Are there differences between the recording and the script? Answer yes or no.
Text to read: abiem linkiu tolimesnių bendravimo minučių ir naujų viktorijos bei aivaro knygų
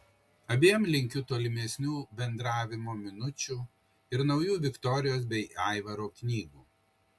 no